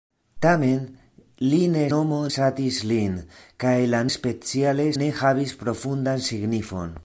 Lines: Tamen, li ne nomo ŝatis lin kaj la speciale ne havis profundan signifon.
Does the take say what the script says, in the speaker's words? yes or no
yes